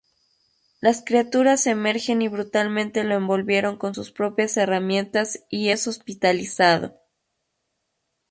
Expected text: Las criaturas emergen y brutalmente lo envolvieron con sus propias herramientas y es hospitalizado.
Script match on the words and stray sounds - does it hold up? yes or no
yes